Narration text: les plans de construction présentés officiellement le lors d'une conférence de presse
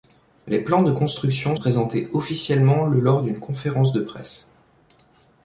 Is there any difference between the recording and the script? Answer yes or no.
no